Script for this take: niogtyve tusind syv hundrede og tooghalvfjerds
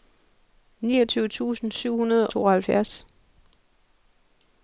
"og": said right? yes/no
no